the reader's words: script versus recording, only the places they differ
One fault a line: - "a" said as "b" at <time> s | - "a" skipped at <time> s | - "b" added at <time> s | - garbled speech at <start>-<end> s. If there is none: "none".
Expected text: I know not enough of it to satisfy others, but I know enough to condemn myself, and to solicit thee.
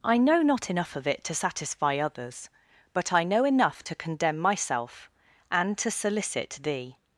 none